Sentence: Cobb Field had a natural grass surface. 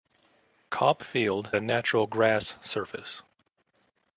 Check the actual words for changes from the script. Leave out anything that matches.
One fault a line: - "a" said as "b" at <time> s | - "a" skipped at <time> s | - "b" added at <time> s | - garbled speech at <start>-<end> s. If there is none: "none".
- "had" skipped at 1.5 s